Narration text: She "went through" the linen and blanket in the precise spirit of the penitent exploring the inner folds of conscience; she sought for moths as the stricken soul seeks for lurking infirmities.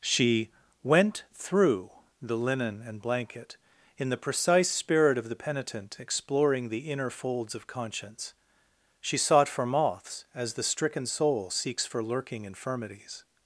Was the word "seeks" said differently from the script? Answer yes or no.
no